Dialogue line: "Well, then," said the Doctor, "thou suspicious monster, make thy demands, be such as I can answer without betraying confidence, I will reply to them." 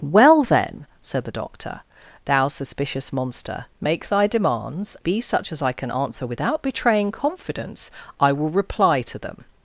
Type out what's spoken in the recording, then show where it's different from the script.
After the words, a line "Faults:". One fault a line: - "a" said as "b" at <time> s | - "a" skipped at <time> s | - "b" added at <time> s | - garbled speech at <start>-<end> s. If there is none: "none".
"Well, then," said the Doctor, "thou suspicious monster, make thy demands, be such as I can answer without betraying confidence, I will reply to them."
Faults:
none